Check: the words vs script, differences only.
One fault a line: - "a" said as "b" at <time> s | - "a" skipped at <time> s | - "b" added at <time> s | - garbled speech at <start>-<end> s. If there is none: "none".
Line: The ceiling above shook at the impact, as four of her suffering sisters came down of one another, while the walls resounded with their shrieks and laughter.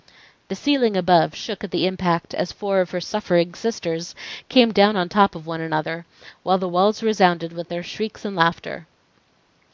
- "on top" added at 5.0 s